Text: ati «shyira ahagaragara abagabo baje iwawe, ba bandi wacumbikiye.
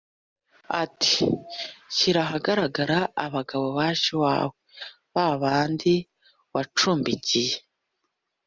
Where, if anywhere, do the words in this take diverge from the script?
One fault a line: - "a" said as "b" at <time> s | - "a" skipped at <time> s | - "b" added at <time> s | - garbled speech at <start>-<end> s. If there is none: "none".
none